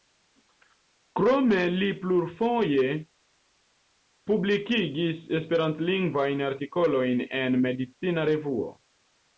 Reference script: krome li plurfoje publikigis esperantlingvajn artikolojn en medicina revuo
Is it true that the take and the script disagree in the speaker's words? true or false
false